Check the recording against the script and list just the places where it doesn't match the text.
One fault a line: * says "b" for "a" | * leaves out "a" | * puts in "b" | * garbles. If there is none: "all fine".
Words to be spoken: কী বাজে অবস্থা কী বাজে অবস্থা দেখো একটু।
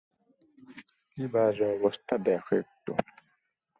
* leaves out "কী বাজে অবস্থা"